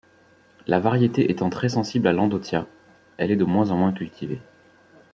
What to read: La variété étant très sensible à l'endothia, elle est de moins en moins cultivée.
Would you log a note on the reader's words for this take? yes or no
no